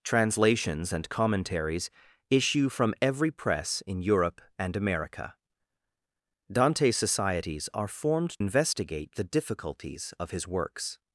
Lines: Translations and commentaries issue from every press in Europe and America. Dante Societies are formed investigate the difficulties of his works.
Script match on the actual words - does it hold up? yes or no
yes